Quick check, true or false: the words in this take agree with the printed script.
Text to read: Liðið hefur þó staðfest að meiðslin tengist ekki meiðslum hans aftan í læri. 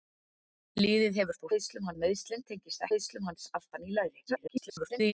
false